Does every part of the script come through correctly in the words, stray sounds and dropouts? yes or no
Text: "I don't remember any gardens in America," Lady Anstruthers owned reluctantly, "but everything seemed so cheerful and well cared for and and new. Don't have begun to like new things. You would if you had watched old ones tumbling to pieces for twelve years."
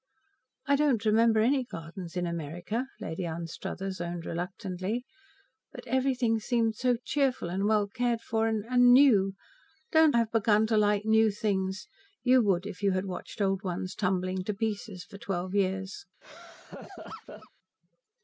no